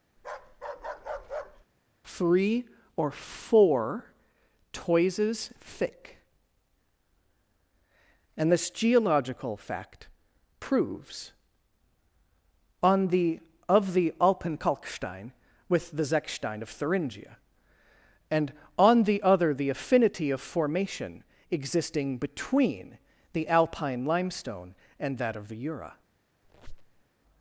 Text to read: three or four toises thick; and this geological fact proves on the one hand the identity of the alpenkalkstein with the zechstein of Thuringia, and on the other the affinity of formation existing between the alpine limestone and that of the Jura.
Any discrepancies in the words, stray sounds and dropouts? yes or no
yes